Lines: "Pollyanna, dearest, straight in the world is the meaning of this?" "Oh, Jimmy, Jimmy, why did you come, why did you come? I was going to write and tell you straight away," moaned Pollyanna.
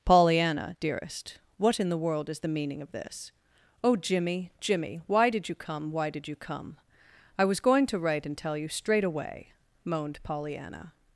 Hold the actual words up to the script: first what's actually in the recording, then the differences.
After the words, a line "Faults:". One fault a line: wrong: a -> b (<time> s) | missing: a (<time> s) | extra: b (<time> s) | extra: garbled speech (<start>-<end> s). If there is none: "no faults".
"Pollyanna, dearest, what in the world is the meaning of this?" "Oh, Jimmy, Jimmy, why did you come, why did you come? I was going to write and tell you straight away," moaned Pollyanna.
Faults:
wrong: straight -> what (1.6 s)